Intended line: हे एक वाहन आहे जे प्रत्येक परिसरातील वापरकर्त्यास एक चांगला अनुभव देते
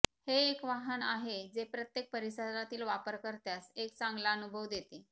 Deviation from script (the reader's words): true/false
false